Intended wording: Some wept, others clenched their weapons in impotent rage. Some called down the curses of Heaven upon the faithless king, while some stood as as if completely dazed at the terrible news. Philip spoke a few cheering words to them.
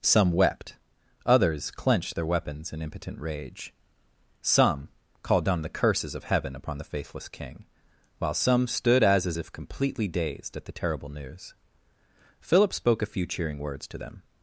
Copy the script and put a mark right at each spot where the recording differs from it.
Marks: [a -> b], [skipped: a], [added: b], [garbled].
Some wept, others clenched their weapons in impotent rage. Some called down the curses of Heaven upon the faithless king, while some stood as as if completely dazed at the terrible news. Philip spoke a few cheering words to them.